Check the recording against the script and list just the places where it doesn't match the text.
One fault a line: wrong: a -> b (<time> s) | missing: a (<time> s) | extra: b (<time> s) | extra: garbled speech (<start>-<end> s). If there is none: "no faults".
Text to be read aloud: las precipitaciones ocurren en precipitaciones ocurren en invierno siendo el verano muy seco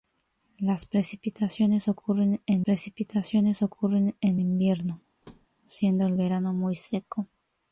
no faults